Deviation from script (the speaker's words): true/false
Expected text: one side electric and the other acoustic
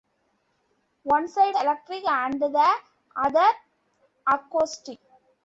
false